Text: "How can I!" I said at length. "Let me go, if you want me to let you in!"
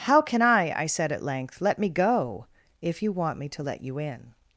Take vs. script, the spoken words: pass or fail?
pass